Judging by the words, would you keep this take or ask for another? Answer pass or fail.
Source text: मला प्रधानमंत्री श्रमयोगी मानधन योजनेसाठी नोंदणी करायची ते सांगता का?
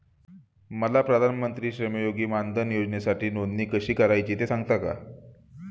fail